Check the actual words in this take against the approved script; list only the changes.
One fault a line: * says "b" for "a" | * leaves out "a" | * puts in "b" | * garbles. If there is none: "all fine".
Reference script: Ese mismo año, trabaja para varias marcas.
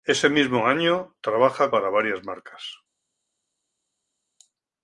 all fine